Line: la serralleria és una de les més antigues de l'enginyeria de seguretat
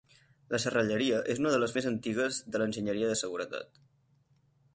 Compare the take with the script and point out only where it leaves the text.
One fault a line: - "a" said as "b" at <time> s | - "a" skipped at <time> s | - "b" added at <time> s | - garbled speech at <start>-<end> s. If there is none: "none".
none